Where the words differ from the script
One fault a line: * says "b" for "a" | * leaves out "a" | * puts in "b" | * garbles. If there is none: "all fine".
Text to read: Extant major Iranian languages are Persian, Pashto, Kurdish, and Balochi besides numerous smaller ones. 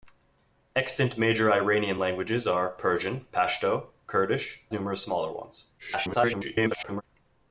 * leaves out "and Balochi besides"
* garbles